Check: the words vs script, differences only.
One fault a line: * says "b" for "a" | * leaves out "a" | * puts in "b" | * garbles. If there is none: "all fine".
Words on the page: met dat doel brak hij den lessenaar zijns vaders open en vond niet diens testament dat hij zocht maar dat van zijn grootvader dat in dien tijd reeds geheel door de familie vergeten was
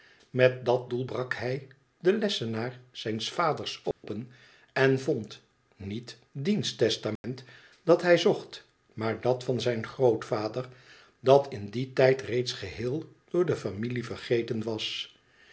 all fine